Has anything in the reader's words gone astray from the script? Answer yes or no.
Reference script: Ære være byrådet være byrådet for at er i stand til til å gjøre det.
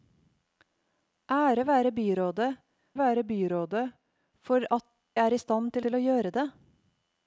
no